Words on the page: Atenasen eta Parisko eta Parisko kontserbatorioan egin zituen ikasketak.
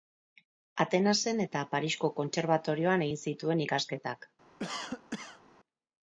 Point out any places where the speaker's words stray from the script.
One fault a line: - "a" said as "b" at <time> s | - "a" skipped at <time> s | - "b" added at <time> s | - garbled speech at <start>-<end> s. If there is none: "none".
- "eta Parisko" skipped at 2.1 s